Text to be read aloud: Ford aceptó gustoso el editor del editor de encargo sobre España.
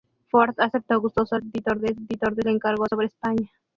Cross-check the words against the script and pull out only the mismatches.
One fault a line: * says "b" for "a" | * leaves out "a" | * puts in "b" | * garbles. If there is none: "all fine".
all fine